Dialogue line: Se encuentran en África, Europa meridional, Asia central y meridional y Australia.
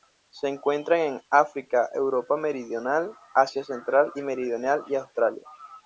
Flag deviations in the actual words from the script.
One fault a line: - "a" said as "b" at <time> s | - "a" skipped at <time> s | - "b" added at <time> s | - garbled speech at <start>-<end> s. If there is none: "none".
none